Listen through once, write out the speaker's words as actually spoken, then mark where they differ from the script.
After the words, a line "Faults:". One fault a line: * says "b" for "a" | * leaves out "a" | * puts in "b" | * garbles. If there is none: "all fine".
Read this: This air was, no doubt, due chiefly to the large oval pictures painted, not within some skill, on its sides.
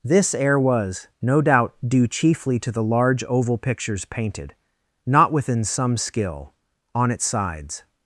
This air was, no doubt, due chiefly to the large oval pictures painted, not within some skill, on its sides.
Faults:
all fine